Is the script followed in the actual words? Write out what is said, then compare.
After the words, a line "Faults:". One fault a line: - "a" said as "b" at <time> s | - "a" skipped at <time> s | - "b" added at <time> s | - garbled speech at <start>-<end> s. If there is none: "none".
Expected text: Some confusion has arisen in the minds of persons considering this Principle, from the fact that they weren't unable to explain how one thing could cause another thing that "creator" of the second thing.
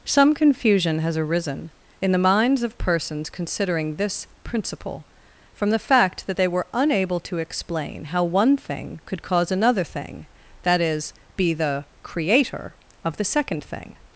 Some confusion has arisen in the minds of persons considering this Principle, from the fact that they were unable to explain how one thing could cause another thing that is, be the "creator" of the second thing.
Faults:
- "weren't" said as "were" at 6.5 s
- "is be the" added at 10.8 s